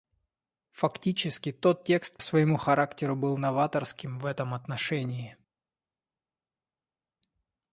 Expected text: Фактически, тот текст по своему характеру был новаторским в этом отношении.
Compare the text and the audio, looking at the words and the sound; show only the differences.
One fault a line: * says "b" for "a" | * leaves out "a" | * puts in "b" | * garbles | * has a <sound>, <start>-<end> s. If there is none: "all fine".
* leaves out "по"